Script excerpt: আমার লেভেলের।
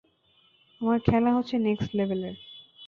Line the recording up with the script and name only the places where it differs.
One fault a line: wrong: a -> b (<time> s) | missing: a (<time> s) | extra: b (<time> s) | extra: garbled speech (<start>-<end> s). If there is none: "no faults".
extra: খেলা হচ্ছে নেক্সট (1.0 s)